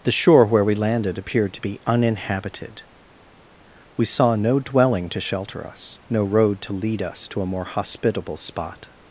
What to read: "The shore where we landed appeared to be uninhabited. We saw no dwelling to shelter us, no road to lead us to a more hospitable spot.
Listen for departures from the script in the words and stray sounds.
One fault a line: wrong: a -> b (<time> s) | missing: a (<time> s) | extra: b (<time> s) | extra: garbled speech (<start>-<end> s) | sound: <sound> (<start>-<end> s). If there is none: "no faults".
no faults